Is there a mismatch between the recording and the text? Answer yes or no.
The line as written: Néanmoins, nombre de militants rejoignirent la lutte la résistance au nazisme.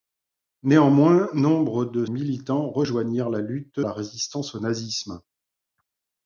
no